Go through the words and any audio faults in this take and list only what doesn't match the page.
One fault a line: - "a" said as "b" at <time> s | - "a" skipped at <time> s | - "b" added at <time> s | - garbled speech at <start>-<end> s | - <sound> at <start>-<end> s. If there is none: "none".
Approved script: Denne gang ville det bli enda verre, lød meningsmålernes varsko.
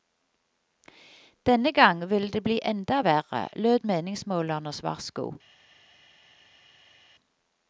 none